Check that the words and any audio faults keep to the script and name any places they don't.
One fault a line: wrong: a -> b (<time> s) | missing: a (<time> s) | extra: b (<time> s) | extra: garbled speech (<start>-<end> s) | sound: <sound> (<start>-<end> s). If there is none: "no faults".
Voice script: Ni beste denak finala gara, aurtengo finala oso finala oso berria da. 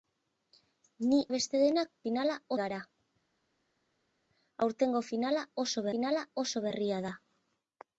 no faults